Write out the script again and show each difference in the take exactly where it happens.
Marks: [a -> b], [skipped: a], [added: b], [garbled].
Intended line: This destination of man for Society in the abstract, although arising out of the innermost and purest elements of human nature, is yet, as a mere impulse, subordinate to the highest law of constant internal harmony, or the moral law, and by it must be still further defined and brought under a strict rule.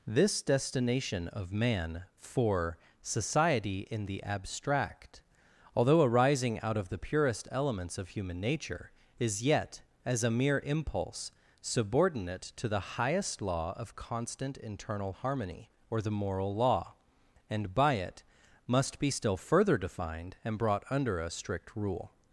This destination of man for Society in the abstract, although arising out of the [skipped: innermost and] purest elements of human nature, is yet, as a mere impulse, subordinate to the highest law of constant internal harmony, or the moral law, and by it must be still further defined and brought under a strict rule.